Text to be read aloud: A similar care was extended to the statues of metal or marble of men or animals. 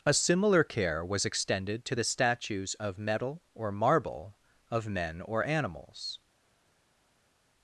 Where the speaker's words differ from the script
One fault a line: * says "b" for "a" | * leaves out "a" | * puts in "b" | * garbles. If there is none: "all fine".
all fine